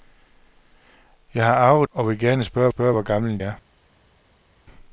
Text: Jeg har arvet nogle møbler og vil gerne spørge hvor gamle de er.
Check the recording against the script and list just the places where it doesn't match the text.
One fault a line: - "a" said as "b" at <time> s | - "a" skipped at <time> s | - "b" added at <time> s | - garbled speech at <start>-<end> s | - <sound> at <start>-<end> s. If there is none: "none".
- "nogle møbler" skipped at 1.9 s
- "spørge" added at 2.7 s
- "de" skipped at 3.4 s